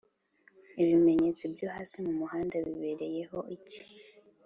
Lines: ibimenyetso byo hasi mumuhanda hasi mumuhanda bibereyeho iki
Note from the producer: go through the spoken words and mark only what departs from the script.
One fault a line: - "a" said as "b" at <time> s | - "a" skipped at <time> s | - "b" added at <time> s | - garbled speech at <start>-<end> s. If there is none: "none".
- "hasi mumuhanda" skipped at 2.5 s